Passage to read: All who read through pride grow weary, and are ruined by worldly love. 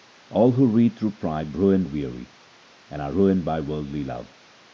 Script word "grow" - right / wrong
wrong